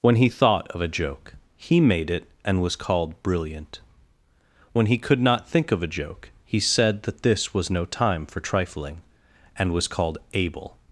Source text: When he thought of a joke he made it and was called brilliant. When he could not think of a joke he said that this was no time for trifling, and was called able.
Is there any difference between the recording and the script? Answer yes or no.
no